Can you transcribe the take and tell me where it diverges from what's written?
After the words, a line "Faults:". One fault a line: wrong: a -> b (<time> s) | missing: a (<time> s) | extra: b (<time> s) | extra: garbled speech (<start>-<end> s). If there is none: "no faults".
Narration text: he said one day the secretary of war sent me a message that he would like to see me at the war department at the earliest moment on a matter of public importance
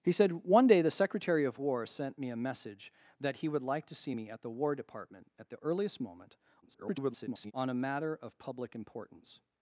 he said one day the secretary of war sent me a message that he would like to see me at the war department at the earliest moment [garbled] on a matter of public importance
Faults:
extra: garbled speech (6.6-7.5 s)